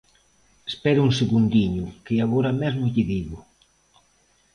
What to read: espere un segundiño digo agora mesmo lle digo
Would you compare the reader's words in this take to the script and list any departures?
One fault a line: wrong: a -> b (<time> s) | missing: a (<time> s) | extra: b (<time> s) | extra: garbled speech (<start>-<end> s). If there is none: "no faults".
wrong: digo -> que (2.0 s)